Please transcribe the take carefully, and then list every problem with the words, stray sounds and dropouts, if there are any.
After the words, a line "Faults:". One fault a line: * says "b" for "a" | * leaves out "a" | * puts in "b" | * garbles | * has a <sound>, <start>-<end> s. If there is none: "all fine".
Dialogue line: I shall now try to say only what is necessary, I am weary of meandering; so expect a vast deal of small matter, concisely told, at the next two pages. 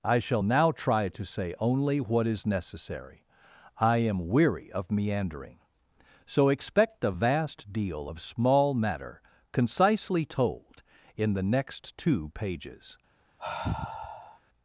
I shall now try to say only what is necessary, I am weary of meandering; so expect a vast deal of small matter, concisely told, in the next two pages.
Faults:
* says "in" for "at"
* has a sigh, 13.4-14.4 s